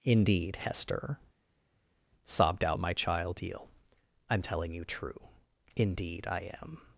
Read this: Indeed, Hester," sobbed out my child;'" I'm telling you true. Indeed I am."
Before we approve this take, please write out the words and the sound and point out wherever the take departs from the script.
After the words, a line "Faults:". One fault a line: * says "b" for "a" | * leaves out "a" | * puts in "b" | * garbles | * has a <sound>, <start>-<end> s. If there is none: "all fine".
Indeed, Hester," sobbed out my child;'" eel I'm telling you true. Indeed I am."
Faults:
* puts in "eel"